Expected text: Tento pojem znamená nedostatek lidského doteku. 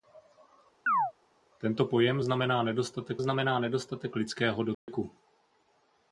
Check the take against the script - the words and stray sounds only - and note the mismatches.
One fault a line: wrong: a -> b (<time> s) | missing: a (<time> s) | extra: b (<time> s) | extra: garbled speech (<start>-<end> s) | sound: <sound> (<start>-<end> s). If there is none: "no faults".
sound: chirp (0.9-1.1 s)
extra: znamená nedostatek (3.2 s)
sound: dropout (4.7-4.9 s)